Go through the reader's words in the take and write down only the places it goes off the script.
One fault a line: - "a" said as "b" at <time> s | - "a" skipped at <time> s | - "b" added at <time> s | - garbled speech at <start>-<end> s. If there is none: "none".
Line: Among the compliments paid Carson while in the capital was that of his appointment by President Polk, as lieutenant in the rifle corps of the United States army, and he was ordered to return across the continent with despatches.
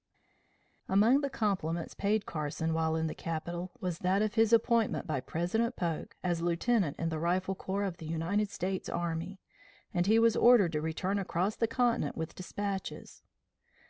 none